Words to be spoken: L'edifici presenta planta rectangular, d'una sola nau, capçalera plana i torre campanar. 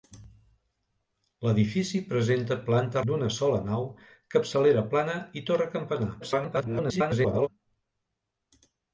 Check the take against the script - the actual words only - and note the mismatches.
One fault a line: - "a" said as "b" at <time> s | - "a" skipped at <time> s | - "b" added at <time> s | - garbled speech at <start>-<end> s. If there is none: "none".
- "rectangular" skipped at 3.0 s
- garbled speech at 6.2-7.5 s